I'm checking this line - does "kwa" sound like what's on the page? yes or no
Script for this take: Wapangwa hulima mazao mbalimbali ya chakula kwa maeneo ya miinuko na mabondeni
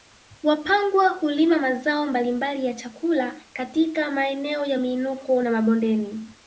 no